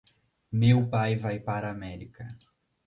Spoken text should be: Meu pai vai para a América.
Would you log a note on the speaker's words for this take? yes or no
no